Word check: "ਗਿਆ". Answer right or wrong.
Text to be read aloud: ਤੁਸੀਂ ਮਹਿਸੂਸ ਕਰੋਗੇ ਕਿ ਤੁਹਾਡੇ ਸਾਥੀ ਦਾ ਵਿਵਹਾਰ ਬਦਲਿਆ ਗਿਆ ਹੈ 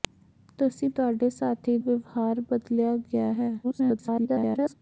right